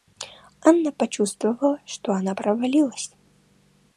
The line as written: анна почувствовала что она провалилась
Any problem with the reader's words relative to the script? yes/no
no